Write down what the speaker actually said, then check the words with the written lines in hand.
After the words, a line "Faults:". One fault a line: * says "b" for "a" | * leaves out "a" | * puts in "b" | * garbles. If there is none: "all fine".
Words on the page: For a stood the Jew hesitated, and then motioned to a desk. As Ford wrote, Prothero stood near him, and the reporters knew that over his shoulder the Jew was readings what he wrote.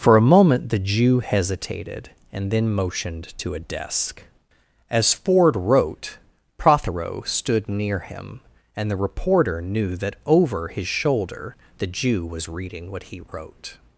For a moment the Jew hesitated, and then motioned to a desk. As Ford wrote, Prothero stood near him, and the reporter knew that over his shoulder the Jew was reading what he wrote.
Faults:
* says "moment" for "stood"
* says "reporter" for "reporters"
* says "reading" for "readings"